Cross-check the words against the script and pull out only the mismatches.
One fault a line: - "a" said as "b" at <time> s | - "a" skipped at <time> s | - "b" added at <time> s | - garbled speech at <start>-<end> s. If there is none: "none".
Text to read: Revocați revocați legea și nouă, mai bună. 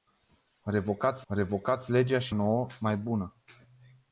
none